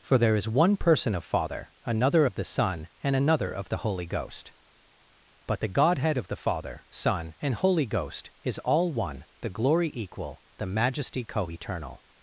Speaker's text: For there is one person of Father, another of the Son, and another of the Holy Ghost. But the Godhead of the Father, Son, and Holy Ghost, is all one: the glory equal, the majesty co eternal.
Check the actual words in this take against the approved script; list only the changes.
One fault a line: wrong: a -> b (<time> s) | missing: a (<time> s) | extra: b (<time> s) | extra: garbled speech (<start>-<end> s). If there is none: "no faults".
no faults